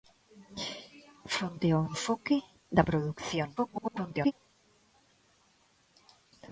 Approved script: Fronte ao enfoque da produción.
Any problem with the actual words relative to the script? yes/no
yes